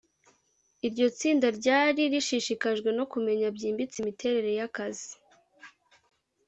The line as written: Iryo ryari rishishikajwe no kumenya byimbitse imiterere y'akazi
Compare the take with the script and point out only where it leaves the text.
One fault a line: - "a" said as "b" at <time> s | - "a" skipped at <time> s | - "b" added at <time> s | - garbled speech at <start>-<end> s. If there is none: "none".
- "tsinda" added at 1.2 s